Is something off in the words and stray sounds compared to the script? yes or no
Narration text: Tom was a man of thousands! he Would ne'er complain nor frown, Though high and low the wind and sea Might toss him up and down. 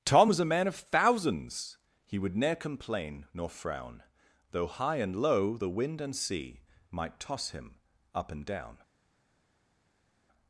no